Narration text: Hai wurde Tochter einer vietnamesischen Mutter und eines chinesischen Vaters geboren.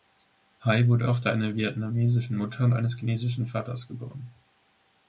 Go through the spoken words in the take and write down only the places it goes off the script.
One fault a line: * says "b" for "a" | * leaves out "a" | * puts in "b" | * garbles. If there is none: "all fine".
all fine